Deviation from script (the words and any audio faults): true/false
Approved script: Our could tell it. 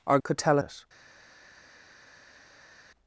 false